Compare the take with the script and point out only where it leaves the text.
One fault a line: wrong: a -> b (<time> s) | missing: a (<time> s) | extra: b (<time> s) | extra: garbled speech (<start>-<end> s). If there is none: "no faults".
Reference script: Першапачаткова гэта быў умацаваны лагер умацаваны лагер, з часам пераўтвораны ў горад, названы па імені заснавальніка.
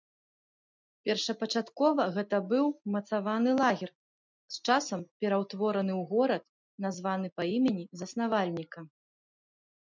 missing: умацаваны лагер (3.9 s)